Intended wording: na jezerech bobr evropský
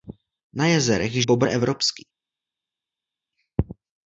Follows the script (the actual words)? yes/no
yes